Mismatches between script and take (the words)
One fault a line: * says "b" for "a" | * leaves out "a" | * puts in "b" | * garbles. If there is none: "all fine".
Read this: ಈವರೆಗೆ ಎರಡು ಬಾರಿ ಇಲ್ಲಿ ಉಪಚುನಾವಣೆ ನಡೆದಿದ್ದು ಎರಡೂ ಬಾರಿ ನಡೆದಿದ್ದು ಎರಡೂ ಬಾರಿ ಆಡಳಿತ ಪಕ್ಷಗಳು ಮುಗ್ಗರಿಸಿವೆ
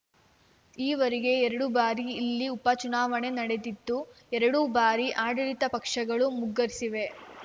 * leaves out "ನಡೆದಿದ್ದು ಎರಡೂ ಬಾರಿ"